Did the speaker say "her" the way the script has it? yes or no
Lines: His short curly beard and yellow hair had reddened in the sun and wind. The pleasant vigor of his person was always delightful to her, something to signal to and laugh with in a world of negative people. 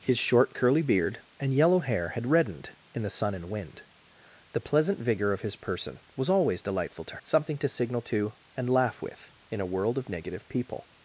no